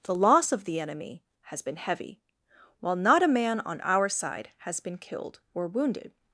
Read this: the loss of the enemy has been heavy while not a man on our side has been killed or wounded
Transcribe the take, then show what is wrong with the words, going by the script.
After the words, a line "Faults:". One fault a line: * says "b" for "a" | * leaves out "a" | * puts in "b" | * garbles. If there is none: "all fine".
the loss of the enemy has been heavy while not a man on our side has been killed or wounded
Faults:
all fine